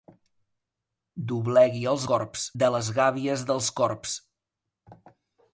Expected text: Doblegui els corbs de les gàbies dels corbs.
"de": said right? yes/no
yes